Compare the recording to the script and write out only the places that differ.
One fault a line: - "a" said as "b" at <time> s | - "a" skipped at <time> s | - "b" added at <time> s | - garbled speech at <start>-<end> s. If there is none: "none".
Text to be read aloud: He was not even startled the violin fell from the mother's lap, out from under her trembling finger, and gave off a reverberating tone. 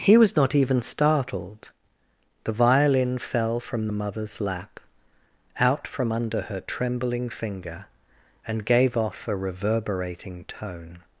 none